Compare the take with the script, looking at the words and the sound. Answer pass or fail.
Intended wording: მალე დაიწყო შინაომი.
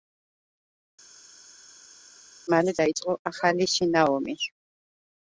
fail